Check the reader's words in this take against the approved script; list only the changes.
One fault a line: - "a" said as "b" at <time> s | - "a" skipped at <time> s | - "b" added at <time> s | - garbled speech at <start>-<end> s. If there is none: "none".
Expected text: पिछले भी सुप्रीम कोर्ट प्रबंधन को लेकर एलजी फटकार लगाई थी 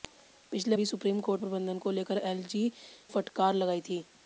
none